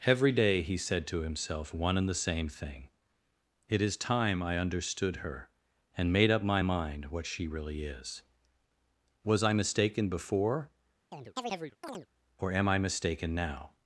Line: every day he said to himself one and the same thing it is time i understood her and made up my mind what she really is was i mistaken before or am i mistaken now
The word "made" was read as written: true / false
true